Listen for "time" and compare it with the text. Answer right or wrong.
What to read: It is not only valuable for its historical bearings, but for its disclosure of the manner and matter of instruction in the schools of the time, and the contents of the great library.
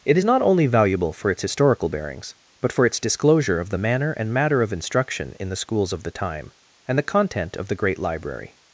right